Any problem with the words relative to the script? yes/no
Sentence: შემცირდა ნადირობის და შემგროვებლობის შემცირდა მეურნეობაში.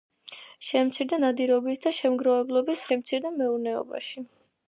no